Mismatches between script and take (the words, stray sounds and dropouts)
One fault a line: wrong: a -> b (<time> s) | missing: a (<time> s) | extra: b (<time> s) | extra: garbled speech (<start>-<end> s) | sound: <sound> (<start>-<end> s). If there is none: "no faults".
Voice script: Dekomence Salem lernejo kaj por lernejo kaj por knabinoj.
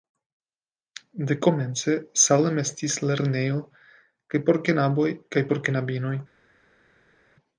extra: estis (2.6 s)
wrong: lernejo -> knaboj (4.7 s)